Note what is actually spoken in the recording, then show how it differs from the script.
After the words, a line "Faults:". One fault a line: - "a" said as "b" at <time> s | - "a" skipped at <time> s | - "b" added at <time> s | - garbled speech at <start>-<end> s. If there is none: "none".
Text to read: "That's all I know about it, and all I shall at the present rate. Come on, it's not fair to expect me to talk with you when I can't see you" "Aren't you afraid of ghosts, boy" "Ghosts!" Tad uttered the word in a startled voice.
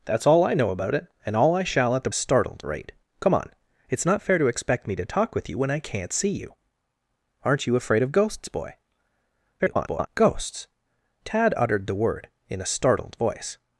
"That's all I know about it, and all I shall at the startled rate. Come on, it's not fair to expect me to talk with you when I can't see you" "Aren't you afraid of ghosts, boy" [garbled] "Ghosts!" Tad uttered the word in a startled voice.
Faults:
- "present" said as "startled" at 2.1 s
- garbled speech at 9.6-10.1 s